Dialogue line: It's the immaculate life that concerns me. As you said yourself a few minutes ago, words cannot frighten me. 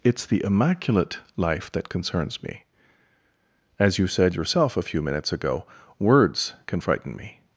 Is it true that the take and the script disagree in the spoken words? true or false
true